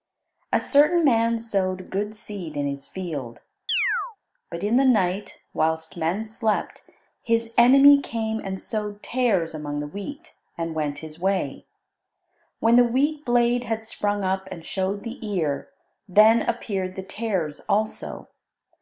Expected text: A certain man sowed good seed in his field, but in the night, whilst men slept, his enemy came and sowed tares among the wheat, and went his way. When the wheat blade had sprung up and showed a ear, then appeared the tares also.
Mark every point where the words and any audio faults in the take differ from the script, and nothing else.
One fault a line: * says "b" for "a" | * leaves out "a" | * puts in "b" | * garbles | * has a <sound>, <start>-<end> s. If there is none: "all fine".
* has a chirp, 3.7-4.2 s
* says "the" for "a"